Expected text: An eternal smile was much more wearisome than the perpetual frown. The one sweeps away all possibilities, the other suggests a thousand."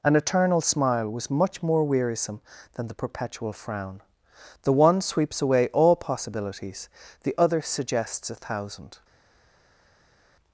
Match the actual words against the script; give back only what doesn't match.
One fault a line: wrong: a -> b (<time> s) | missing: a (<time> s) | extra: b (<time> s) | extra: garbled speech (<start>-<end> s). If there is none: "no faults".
no faults